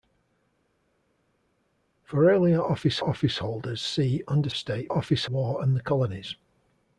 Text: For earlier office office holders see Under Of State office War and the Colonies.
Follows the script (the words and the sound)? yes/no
yes